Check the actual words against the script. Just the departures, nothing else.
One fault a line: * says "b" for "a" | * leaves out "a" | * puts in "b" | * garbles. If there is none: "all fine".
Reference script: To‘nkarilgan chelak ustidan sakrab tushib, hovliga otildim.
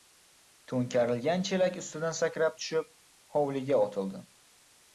all fine